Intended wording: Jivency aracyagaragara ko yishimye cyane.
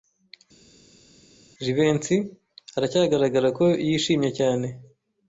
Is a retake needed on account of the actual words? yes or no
no